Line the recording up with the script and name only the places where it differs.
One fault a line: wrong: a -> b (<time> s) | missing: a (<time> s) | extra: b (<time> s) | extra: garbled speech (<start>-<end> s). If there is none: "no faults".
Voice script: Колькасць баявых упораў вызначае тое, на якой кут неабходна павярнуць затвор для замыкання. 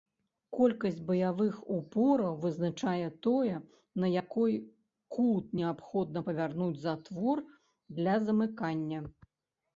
no faults